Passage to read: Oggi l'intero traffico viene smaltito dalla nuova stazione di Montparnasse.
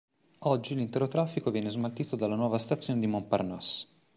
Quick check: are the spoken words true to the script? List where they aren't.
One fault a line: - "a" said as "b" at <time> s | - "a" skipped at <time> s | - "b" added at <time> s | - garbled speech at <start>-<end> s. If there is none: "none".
none